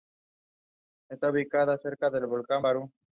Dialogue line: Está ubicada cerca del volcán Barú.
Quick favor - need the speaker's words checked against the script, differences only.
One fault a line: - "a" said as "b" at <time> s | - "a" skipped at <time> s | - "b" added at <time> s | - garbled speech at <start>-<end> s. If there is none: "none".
none